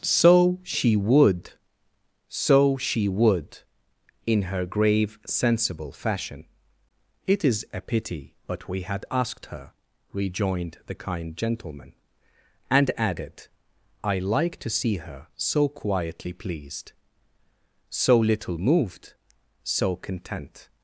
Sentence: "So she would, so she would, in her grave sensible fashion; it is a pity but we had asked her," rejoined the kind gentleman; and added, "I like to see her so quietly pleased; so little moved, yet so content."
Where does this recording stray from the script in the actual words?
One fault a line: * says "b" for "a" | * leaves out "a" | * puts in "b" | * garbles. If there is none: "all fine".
* leaves out "yet"